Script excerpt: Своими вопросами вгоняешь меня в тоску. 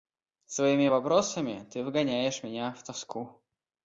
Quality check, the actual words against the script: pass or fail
fail